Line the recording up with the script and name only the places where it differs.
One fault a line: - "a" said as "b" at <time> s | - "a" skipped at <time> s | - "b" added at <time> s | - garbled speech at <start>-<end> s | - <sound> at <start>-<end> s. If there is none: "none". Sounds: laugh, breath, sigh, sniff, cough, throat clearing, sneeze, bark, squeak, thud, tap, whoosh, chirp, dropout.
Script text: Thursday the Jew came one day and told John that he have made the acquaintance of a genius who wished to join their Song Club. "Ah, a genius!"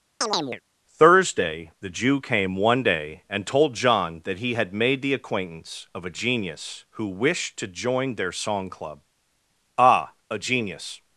- chirp at 0.2-0.6 s
- "have" said as "had" at 4.5 s